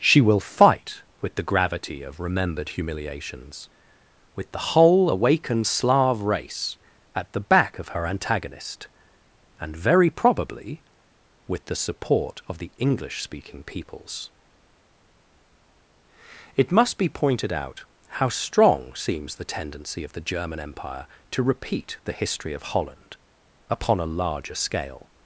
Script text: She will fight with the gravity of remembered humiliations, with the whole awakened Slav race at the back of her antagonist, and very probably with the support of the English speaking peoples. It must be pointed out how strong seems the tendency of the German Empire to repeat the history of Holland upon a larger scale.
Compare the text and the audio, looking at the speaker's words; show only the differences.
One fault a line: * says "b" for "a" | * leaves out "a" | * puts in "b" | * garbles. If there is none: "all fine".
all fine